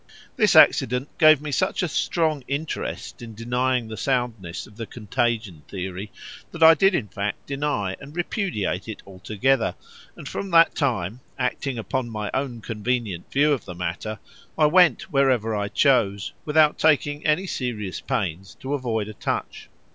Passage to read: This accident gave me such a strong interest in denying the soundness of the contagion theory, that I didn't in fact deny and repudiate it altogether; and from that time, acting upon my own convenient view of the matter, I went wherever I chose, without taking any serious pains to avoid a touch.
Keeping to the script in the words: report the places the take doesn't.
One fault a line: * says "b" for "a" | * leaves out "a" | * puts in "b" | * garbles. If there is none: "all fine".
* says "did" for "didn't"